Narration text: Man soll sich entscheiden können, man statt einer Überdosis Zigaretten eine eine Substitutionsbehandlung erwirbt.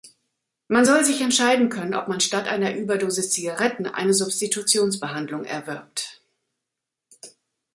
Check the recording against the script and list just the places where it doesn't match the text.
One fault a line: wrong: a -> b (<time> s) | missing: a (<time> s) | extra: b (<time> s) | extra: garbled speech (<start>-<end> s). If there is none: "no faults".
extra: ob (1.9 s)
missing: eine (4.1 s)